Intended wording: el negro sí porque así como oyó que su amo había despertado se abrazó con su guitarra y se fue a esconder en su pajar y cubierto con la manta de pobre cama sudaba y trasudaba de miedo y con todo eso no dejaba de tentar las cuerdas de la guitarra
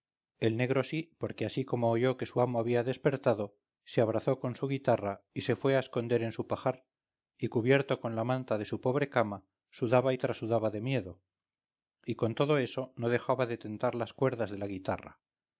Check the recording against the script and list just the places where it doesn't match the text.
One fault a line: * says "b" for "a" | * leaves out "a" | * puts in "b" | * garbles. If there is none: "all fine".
* puts in "su"